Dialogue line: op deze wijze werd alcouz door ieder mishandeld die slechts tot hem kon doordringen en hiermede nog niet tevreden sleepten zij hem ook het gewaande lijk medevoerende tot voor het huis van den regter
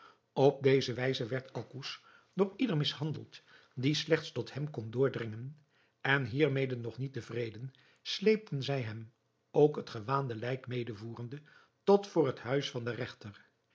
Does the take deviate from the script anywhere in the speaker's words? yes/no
no